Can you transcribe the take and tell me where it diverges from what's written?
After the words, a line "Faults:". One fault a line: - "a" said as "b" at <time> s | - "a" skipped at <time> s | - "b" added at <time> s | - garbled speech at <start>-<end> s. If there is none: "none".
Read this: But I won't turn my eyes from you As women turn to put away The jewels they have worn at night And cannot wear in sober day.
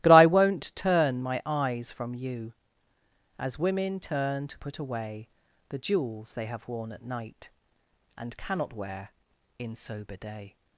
But I won't turn my eyes from you As women turn to put away The jewels they have worn at night And cannot wear in sober day.
Faults:
none